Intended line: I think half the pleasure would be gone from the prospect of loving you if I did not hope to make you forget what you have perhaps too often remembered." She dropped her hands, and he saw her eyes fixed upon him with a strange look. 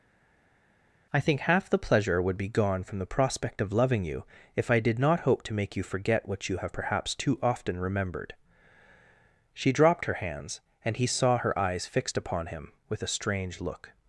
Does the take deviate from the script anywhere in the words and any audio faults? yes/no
no